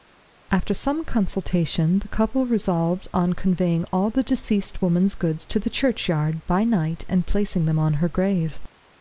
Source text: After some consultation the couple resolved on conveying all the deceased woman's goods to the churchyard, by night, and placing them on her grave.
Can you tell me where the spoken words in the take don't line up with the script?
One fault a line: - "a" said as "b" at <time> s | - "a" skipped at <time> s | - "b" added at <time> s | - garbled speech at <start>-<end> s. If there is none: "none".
none